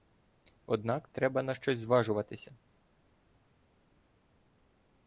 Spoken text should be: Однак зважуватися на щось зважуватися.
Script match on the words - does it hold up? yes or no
no